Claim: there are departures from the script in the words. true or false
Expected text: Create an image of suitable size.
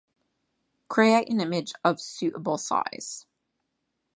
false